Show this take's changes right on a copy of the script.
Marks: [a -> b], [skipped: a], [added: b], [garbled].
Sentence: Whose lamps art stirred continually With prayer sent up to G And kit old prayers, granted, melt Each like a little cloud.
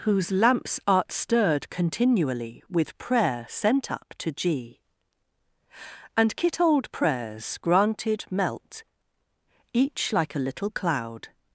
Whose lamps art stirred continually With prayer sent up to G And kit old prayers, granted, melt Each like a little cloud.